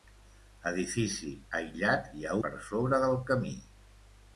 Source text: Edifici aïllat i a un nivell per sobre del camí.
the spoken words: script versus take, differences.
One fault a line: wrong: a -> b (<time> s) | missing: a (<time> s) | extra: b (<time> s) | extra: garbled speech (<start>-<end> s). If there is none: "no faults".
missing: un nivell (2.4 s)